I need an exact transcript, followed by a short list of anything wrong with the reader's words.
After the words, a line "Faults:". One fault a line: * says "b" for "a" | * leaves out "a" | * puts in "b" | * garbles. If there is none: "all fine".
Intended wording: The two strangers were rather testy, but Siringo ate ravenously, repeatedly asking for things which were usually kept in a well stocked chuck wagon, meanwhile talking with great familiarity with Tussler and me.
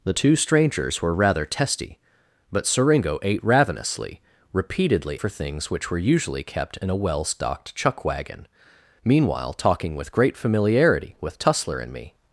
The two strangers were rather testy, but Siringo ate ravenously, repeatedly for things which were usually kept in a well stocked chuck wagon, meanwhile talking with great familiarity with Tussler and me.
Faults:
* leaves out "asking"